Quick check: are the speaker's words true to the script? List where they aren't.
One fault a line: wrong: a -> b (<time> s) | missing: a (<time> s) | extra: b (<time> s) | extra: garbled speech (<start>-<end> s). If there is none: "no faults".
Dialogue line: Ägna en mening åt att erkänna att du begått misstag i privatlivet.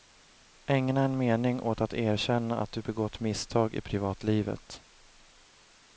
no faults